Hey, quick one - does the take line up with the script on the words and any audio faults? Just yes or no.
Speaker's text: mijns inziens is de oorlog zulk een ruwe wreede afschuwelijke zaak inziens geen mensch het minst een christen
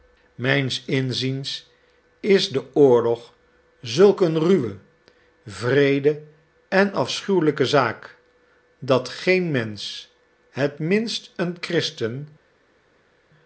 no